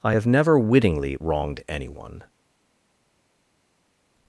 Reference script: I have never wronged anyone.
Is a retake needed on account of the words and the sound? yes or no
yes